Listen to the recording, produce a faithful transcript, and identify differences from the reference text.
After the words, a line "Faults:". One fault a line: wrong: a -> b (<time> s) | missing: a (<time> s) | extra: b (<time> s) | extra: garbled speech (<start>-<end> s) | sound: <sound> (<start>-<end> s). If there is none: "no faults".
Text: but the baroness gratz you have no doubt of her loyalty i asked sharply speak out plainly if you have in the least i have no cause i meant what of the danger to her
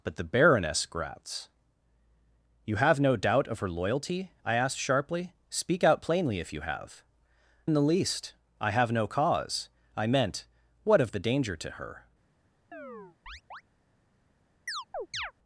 but the baroness gratz you have no doubt of her loyalty i asked sharply speak out plainly if you have in the least i have no cause i meant what of the danger to her
Faults:
sound: chirp (12.7-13.6 s)
sound: chirp (14.7-15.3 s)